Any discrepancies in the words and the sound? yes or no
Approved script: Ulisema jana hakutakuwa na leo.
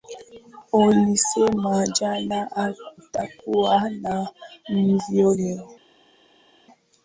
yes